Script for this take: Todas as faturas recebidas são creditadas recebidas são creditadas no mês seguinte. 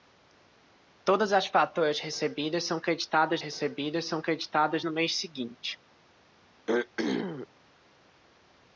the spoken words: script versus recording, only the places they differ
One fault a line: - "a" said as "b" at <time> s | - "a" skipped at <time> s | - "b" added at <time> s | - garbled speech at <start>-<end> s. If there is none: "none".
none